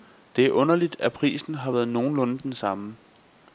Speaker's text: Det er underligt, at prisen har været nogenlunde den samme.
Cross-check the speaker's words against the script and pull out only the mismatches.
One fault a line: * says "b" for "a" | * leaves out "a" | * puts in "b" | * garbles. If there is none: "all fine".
all fine